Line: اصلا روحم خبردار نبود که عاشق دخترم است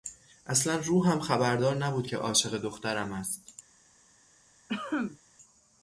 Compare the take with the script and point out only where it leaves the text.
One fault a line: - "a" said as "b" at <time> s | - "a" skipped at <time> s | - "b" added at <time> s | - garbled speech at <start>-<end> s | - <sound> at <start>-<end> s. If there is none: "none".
- cough at 4.7-5.2 s